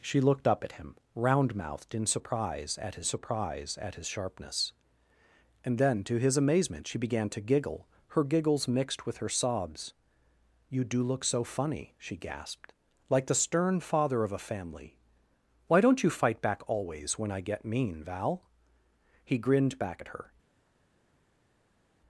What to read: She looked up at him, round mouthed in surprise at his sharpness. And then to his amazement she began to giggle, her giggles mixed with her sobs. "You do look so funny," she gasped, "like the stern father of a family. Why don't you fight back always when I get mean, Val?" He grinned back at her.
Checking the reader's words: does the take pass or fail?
fail